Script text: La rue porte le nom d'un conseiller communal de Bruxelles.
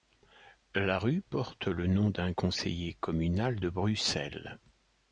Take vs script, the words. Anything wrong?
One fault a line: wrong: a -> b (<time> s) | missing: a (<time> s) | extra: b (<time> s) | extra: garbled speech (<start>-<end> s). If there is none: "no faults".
no faults